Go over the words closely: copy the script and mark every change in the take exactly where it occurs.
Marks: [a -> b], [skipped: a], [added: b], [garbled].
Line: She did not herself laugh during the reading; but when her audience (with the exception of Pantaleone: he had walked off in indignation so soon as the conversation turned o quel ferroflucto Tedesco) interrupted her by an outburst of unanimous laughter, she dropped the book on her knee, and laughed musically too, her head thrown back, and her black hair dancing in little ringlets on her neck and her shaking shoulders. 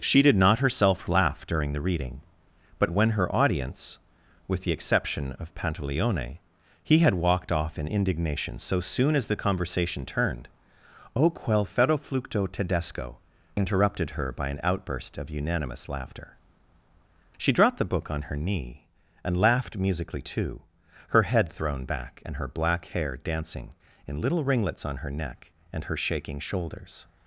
She did not herself laugh during the reading; but when her audience (with the exception of Pantaleone: he had walked off in indignation so soon as the conversation turned o quel ferroflucto Tedesco) interrupted her by an outburst of unanimous laughter, she dropped the book on her knee, and laughed musically too, her head thrown back, and her black hair dancing in little ringlets on her neck and her shaking shoulders.